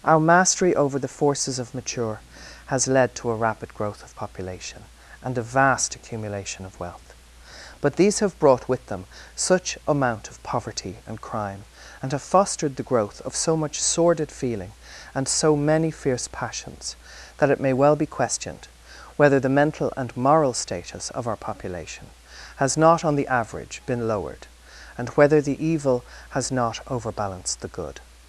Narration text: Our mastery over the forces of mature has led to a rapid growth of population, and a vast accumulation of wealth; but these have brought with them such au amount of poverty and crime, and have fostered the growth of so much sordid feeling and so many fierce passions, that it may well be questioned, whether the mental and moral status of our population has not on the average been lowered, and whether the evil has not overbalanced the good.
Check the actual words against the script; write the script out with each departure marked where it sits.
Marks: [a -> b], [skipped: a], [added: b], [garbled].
Our mastery over the forces of mature has led to a rapid growth of population, and a vast accumulation of wealth; but these have brought with them such [skipped: au] amount of poverty and crime, and have fostered the growth of so much sordid feeling and so many fierce passions, that it may well be questioned, whether the mental and moral status of our population has not on the average been lowered, and whether the evil has not overbalanced the good.